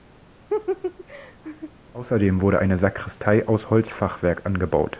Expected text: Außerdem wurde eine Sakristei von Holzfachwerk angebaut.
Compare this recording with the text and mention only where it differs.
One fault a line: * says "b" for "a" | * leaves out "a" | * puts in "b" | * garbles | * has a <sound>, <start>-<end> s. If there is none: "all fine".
* has a laugh, 0.5-1.7 s
* says "aus" for "von"